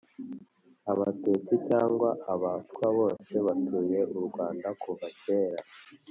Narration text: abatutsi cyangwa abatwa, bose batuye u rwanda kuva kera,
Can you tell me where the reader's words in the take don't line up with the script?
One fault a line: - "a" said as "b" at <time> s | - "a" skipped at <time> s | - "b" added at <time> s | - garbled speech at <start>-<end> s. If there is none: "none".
none